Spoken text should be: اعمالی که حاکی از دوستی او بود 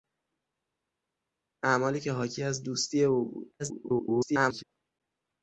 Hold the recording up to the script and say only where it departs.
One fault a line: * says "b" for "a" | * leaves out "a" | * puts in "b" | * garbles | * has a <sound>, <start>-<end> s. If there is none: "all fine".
* garbles